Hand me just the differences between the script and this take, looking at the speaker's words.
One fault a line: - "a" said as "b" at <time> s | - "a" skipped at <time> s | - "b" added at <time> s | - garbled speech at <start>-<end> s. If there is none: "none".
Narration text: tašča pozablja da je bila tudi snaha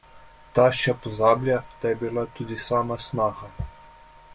- "sama" added at 2.7 s